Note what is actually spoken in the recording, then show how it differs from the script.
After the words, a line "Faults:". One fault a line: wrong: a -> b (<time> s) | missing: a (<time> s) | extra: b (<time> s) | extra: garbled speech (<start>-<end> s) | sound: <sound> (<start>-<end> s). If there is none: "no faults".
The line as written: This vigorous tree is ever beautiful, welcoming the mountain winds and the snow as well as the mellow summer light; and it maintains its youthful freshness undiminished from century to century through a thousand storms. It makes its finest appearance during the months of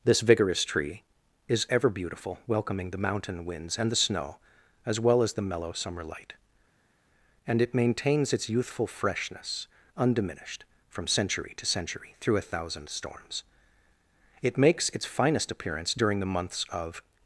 This vigorous tree is ever beautiful, welcoming the mountain winds and the snow as well as the mellow summer light; and it maintains its youthful freshness undiminished from century to century through a thousand storms. It makes its finest appearance during the months of
Faults:
no faults